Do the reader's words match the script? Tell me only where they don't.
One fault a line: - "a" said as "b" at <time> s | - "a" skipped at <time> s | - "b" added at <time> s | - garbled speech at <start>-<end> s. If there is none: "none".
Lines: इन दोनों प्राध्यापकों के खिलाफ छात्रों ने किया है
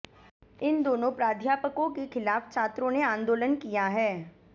- "आंदोलन" added at 3.0 s